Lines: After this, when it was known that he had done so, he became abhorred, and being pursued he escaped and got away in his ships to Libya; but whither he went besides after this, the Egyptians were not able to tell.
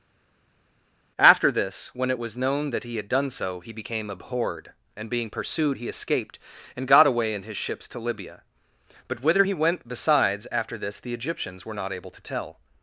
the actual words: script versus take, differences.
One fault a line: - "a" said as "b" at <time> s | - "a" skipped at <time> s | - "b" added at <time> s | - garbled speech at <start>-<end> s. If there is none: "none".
none